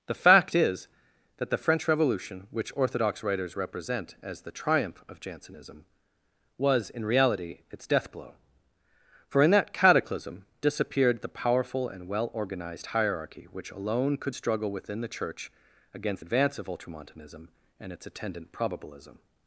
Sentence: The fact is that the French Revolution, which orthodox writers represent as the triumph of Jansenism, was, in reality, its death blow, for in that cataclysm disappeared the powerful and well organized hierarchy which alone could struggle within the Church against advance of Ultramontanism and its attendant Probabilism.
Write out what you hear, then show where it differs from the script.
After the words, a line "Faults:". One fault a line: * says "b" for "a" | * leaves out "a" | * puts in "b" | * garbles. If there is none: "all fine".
The fact is that the French Revolution, which orthodox writers represent as the triumph of Jansenism, was, in reality, its death blow, for in that cataclysm disappeared the powerful and well organized hierarchy which alone could struggle within the Church against advance of Ultramontanism and its attendant Probabilism.
Faults:
all fine